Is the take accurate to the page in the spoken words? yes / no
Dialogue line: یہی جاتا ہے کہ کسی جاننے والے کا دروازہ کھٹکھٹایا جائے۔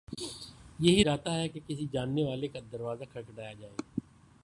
yes